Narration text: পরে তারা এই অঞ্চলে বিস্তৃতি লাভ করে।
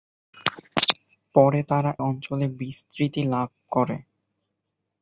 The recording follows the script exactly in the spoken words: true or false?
false